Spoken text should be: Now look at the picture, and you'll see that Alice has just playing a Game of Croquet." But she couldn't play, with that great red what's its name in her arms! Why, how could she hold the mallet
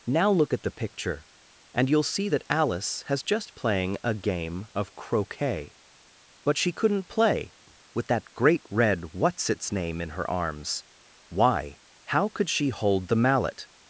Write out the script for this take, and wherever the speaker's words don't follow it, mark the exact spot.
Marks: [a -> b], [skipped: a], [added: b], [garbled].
Now look at the picture, and you'll see that Alice has just playing a Game of Croquet." But she couldn't play, with that great red what's its name in her arms! Why, how could she hold the mallet